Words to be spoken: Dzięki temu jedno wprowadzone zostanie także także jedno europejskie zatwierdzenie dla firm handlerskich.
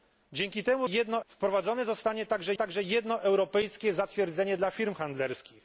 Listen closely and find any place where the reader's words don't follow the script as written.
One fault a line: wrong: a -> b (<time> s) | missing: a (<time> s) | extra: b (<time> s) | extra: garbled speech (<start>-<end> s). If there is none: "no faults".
no faults